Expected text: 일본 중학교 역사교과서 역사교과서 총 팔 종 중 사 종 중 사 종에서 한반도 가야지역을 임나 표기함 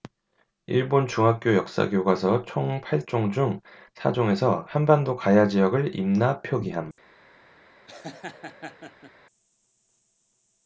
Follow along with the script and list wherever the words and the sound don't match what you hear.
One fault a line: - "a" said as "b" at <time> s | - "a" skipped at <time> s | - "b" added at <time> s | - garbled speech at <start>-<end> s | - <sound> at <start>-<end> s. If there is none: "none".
- "역사교과서" skipped at 2.5 s
- "종 중 사" skipped at 4.1 s
- laugh at 7.9-9.1 s